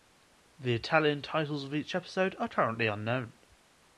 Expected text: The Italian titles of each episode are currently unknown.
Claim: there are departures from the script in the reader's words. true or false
false